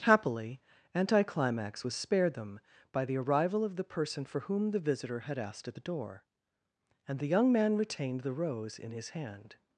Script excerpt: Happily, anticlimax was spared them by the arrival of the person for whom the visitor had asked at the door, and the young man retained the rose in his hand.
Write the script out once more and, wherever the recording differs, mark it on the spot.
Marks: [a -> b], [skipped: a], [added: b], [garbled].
Happily, anticlimax was spared them by the arrival of the person for whom the visitor had asked at the door, and the young man retained the rose in his hand.